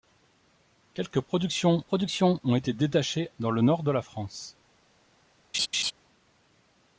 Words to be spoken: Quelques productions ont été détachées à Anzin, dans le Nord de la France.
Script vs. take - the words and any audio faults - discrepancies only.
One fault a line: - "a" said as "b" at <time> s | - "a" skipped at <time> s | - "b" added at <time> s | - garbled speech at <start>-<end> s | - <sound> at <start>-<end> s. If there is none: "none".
- "productions" added at 1.8 s
- "à Anzin" skipped at 3.3 s
- laugh at 5.5-5.9 s